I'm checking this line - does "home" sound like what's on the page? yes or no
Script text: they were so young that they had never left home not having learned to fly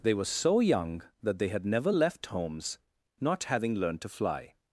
no